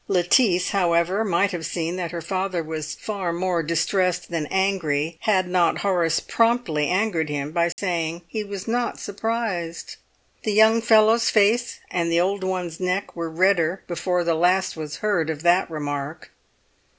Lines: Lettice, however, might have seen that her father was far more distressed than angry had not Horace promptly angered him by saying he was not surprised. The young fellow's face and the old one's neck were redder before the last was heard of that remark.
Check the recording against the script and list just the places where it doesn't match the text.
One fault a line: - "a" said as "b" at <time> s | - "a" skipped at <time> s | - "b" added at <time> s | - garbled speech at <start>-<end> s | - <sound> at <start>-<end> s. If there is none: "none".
- dropout at 7.7-7.8 s